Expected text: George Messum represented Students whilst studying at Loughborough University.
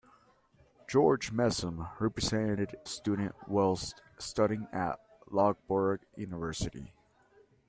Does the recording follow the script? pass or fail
pass